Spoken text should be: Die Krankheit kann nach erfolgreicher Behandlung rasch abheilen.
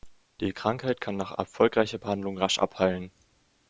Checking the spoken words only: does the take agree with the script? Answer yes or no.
yes